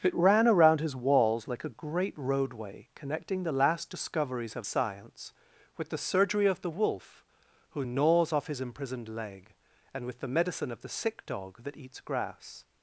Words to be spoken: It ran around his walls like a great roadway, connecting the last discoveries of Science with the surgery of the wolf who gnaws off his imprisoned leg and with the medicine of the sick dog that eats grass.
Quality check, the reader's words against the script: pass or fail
pass